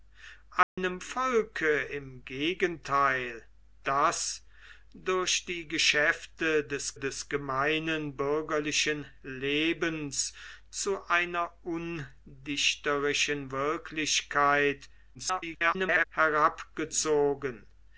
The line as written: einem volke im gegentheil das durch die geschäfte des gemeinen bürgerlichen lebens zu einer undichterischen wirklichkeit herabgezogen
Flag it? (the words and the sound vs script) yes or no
yes